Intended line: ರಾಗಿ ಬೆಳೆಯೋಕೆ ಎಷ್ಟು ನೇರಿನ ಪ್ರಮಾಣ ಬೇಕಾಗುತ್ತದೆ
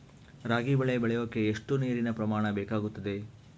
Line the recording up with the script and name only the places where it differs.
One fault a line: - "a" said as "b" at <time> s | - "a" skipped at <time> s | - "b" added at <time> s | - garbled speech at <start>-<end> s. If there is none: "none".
- "ಬೆಳೆ" added at 0.8 s